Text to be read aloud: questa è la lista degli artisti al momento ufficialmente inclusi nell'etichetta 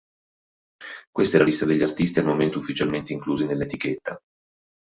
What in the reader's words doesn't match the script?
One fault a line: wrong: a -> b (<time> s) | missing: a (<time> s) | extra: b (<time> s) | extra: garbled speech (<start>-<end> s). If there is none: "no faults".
no faults